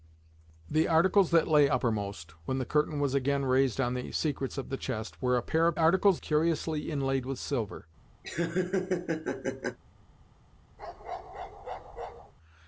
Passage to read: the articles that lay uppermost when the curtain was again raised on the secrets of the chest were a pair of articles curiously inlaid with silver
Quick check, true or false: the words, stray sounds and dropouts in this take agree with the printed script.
false